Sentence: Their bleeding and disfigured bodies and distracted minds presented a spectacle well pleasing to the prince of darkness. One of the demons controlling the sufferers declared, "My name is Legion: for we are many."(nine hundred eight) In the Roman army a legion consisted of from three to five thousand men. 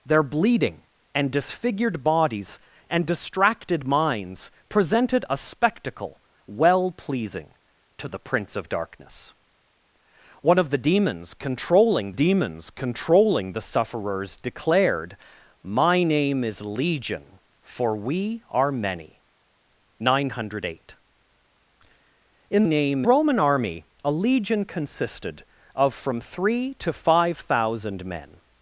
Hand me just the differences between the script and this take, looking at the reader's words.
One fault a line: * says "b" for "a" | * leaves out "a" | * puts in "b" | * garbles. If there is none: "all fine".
* puts in "demons controlling"
* says "name" for "the"